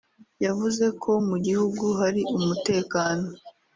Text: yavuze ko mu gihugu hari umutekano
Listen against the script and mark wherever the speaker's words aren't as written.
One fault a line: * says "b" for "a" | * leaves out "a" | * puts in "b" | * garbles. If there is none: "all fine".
all fine